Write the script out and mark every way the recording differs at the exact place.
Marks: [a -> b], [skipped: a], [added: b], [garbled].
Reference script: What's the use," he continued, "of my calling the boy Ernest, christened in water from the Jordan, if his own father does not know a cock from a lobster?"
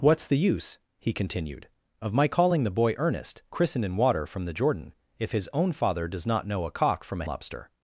What's the use," he continued, "of my calling the boy Ernest, christened in water from the Jordan, if his own father does not know a cock from a lobster?"